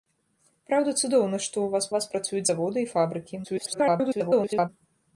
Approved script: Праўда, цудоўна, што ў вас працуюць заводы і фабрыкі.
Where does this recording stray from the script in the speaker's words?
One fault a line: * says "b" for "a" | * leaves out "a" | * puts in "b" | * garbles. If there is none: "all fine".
* puts in "вас"
* garbles